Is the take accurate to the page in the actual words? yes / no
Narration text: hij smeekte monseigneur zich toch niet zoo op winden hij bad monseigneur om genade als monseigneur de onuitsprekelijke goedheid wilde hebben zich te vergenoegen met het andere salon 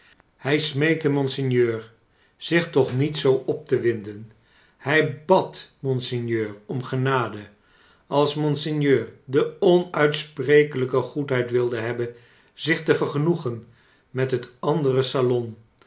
no